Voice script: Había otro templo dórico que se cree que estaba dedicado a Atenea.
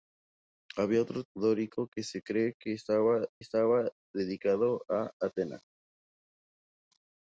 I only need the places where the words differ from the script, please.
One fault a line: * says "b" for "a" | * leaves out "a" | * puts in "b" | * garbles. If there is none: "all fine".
* leaves out "templo"
* puts in "estaba"